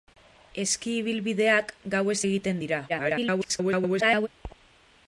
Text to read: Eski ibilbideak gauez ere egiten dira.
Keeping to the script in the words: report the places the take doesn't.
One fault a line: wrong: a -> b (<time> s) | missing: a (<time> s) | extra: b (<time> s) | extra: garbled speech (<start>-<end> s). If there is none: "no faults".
missing: ere (2.2 s)
extra: garbled speech (2.9-4.3 s)